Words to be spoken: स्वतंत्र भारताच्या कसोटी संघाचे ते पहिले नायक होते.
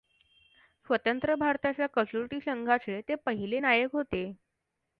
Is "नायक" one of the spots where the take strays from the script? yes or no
no